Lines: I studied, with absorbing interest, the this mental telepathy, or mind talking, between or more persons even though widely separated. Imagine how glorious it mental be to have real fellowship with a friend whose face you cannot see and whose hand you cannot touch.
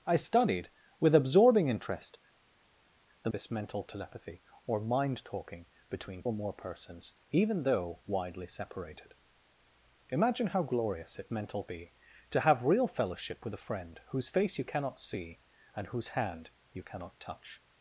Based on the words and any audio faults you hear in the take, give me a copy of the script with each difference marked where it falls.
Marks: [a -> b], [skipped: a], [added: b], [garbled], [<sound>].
I studied, with absorbing interest, the this mental telepathy, or mind talking, between or more persons even though widely separated. Imagine how glorious it mental be to have real fellowship with a friend whose face you cannot see and whose hand you cannot touch.